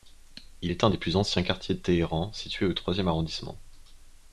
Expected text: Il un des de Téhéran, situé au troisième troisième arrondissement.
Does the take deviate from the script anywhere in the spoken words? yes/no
yes